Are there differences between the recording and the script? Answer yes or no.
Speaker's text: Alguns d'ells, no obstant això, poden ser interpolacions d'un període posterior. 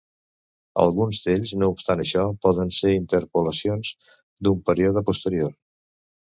no